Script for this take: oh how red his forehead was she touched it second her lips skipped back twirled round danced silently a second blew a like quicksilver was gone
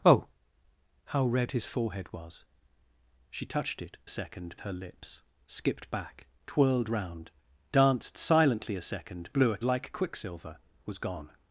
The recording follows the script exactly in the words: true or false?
true